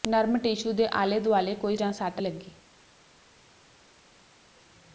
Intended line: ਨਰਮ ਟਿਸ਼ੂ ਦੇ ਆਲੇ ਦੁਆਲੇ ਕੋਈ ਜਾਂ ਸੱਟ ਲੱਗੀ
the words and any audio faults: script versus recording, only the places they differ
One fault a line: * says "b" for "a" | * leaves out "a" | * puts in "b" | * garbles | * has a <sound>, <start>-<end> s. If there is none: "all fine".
all fine